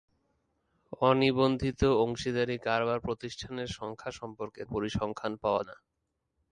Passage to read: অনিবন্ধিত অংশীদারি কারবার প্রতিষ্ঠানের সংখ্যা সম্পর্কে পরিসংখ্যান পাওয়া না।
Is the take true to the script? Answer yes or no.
yes